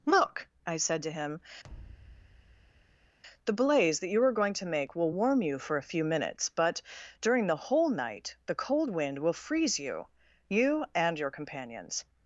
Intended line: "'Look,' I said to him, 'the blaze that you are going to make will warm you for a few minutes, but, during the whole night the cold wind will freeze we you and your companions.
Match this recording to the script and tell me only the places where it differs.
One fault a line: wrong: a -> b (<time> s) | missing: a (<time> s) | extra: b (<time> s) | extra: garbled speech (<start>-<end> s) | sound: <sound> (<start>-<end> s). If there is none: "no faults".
sound: thud (1.6-3.2 s)
wrong: we -> you (9.8 s)